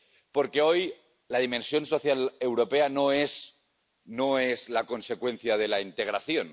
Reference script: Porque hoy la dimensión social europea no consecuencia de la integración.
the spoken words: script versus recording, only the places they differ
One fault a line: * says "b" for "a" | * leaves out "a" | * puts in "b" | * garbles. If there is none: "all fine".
* puts in "es la"